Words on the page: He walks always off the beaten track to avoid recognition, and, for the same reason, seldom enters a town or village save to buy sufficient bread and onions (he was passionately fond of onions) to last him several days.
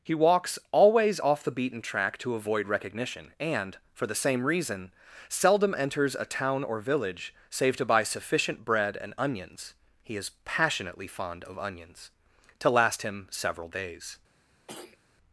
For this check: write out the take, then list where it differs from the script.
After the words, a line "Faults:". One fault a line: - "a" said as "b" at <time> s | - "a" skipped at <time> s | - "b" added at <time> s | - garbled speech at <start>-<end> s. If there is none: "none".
He walks always off the beaten track to avoid recognition, and, for the same reason, seldom enters a town or village save to buy sufficient bread and onions (he is passionately fond of onions) to last him several days.
Faults:
- "was" said as "is" at 10.2 s